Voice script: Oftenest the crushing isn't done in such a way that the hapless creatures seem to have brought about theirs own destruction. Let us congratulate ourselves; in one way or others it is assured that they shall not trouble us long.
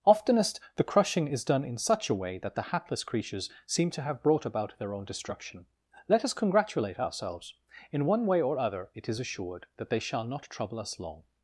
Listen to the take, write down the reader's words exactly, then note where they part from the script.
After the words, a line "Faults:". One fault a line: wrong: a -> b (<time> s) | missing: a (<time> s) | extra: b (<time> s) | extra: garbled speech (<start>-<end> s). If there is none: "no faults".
Oftenest the crushing is done in such a way that the hapless creatures seem to have brought about their own destruction. Let us congratulate ourselves; in one way or other it is assured that they shall not trouble us long.
Faults:
wrong: isn't -> is (1.3 s)
wrong: theirs -> their (4.8 s)
wrong: others -> other (8.6 s)